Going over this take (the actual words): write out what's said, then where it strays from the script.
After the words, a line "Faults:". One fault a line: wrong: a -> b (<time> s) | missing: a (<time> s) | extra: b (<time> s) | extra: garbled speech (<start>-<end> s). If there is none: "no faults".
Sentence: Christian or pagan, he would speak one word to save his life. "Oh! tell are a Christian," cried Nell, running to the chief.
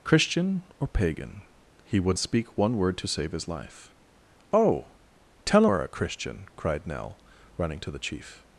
Christian or pagan, he would speak one word to save his life. "Oh! tell are a Christian," cried Nell, running to the chief.
Faults:
no faults